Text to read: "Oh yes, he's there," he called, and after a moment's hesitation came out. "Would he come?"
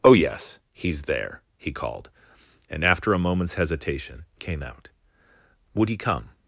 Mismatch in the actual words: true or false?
false